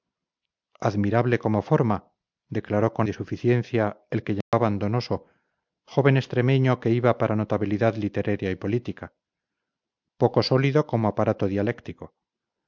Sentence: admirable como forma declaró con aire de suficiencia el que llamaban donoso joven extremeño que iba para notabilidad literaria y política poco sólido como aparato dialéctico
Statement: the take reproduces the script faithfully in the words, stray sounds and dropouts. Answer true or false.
false